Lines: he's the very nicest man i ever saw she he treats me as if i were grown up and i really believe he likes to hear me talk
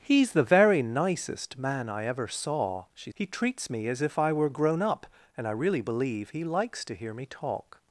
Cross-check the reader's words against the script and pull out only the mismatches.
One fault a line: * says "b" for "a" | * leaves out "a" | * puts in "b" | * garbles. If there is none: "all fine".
all fine